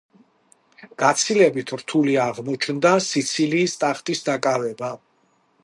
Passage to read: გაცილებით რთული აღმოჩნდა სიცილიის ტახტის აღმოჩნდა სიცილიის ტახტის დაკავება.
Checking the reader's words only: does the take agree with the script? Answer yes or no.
no